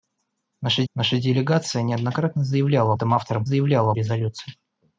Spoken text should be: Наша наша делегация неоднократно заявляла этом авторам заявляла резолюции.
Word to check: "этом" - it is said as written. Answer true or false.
true